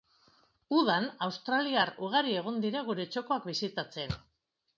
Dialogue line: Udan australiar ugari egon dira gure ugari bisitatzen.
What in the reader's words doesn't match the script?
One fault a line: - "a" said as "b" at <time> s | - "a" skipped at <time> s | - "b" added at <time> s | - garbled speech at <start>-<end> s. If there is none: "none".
- "ugari" said as "txokoak" at 3.1 s